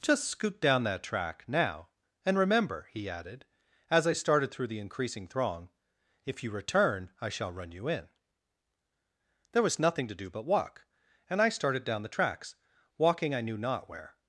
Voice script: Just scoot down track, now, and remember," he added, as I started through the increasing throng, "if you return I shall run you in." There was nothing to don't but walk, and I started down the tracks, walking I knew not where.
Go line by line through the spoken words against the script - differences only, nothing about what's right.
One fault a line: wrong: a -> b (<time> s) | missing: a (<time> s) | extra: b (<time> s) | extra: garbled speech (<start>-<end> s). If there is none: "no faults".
extra: that (0.8 s)
wrong: don't -> do (10.2 s)